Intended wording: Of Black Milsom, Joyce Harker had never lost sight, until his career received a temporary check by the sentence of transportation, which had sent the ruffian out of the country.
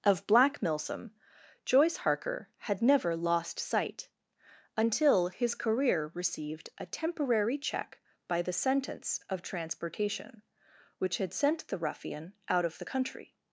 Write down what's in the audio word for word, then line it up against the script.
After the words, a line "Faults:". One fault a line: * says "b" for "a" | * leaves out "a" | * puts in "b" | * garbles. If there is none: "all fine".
Of Black Milsom, Joyce Harker had never lost sight, until his career received a temporary check by the sentence of transportation, which had sent the ruffian out of the country.
Faults:
all fine